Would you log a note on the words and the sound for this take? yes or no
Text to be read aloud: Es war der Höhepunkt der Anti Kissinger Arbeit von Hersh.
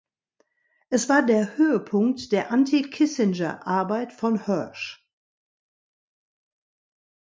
no